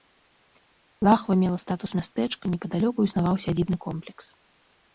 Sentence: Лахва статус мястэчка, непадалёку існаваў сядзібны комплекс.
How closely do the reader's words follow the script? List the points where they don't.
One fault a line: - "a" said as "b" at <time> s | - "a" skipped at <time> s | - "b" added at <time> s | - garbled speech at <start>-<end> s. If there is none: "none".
- "мела" added at 1.4 s